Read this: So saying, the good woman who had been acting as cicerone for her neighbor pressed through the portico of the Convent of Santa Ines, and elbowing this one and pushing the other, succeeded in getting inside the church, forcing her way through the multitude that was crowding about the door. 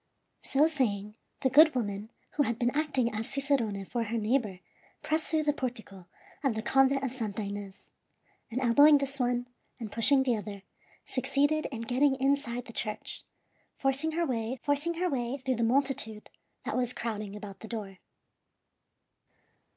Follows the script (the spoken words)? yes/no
no